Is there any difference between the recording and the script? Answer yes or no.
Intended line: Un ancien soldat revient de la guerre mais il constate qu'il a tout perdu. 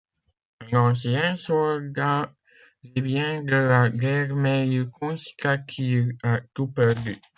no